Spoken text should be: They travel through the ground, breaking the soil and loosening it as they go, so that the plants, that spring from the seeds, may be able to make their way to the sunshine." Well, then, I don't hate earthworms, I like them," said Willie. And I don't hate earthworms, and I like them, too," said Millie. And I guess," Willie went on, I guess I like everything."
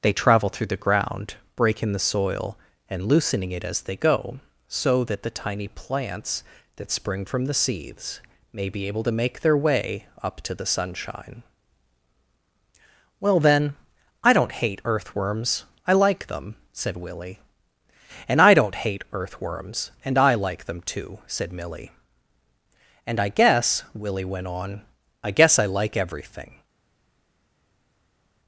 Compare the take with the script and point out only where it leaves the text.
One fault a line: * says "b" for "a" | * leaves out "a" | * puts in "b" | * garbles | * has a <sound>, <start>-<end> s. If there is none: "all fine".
* puts in "tiny"
* puts in "up"